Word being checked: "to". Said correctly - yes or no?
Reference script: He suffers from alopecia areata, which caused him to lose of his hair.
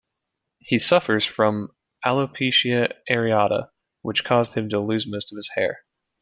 yes